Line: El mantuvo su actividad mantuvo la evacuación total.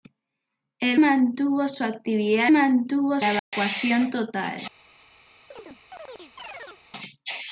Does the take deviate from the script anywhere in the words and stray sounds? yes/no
yes